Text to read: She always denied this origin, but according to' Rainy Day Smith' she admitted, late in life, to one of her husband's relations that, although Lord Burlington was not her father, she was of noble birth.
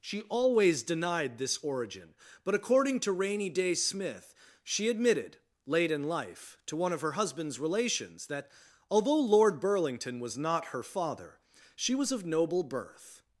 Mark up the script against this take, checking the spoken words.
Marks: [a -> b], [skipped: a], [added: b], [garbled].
She always denied this origin, but according to' Rainy Day Smith' she admitted, late in life, to one of her husband's relations that, although Lord Burlington was not her father, she was of noble birth.